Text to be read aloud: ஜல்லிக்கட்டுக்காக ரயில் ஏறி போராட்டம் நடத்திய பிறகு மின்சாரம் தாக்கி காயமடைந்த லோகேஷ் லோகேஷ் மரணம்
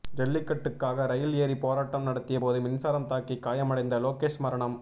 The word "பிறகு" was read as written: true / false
false